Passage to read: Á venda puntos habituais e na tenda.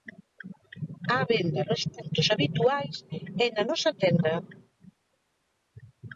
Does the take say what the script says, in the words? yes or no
no